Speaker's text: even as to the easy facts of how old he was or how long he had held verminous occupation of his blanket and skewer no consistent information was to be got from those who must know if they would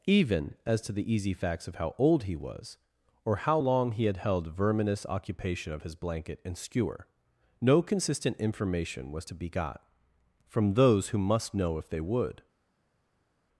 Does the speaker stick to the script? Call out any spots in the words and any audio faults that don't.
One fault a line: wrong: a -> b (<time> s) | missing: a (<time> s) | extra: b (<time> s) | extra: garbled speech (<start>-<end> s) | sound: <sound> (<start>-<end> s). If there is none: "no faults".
no faults